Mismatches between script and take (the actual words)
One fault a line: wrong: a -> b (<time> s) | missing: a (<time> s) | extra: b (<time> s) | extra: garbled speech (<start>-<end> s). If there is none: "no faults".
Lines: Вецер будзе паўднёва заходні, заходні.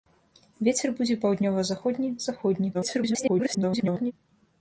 extra: garbled speech (2.7-4.1 s)